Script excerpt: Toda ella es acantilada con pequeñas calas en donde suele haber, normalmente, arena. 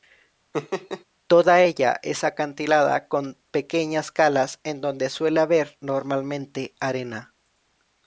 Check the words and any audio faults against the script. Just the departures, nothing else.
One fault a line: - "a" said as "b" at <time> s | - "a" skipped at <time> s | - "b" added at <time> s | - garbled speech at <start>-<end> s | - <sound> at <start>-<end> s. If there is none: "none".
- laugh at 0.5-1.0 s